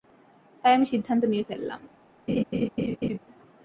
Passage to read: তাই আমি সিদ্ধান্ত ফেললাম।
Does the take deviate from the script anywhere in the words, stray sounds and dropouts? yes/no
yes